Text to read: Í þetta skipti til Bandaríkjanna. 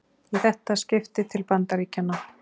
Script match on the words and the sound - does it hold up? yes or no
yes